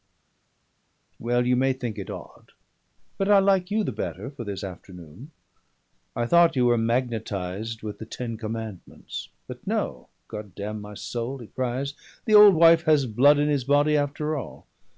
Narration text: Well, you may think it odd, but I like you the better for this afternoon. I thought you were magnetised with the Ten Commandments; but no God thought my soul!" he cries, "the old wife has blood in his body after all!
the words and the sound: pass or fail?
fail